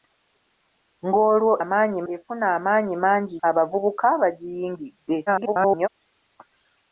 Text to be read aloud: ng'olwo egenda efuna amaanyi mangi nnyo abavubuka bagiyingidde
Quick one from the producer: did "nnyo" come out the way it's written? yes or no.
no